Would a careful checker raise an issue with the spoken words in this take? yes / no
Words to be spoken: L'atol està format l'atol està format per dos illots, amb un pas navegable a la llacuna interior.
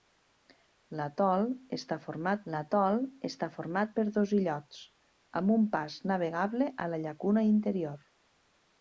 no